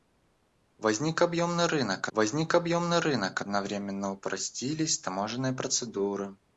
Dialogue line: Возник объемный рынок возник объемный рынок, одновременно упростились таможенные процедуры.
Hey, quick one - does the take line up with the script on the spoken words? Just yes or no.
yes